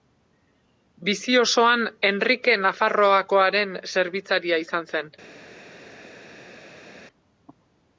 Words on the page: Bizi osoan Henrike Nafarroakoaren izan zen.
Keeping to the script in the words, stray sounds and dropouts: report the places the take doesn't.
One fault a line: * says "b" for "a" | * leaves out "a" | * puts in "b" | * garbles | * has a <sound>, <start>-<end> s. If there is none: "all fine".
* puts in "zerbitzaria"